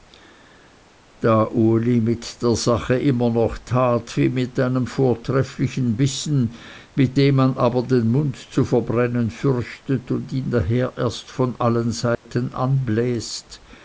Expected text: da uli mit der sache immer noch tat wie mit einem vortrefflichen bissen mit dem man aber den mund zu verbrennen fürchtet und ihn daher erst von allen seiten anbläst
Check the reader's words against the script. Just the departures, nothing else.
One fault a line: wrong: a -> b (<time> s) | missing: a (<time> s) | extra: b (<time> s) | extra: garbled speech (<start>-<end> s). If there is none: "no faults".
no faults